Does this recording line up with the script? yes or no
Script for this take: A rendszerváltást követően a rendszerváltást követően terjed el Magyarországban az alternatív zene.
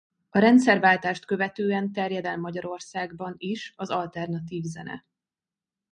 no